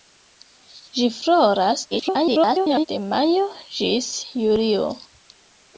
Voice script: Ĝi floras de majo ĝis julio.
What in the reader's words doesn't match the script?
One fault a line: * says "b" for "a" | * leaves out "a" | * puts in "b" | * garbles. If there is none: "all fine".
* garbles